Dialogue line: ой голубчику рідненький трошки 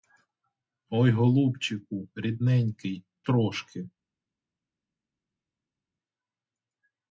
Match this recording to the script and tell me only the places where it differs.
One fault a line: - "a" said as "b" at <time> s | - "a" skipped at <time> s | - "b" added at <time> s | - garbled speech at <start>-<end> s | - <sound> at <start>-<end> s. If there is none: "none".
none